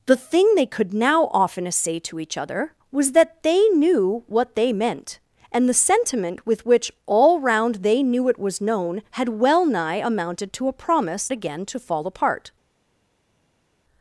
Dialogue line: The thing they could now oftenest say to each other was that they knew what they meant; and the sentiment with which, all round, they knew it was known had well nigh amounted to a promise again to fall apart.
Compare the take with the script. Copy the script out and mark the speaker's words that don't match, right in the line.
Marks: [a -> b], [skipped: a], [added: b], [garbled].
The thing they could now oftenest say to each other was that they knew what they meant; and the sentiment with which, all round, they knew it was known had well nigh amounted to a promise again to fall apart.